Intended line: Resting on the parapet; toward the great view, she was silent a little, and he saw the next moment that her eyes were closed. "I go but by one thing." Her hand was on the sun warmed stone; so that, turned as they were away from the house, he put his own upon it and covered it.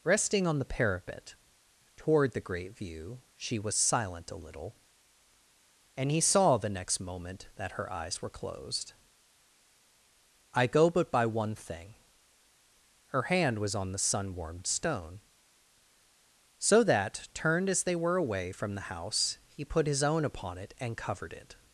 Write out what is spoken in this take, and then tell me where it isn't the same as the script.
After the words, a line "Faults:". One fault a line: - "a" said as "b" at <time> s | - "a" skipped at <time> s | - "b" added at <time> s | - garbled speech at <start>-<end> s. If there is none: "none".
Resting on the parapet; toward the great view, she was silent a little, and he saw the next moment that her eyes were closed. "I go but by one thing." Her hand was on the sun warmed stone; so that, turned as they were away from the house, he put his own upon it and covered it.
Faults:
none